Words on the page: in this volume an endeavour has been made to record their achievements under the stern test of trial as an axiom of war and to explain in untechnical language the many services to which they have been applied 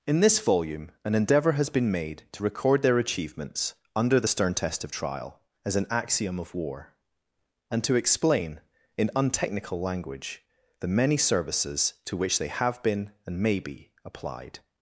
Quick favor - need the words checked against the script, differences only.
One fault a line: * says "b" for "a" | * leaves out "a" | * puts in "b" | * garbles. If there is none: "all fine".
* puts in "and may be"